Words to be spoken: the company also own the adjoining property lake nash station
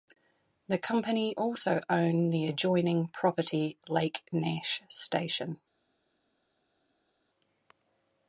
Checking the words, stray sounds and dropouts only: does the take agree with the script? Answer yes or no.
yes